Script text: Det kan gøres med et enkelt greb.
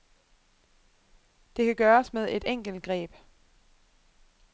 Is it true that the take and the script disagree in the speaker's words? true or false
false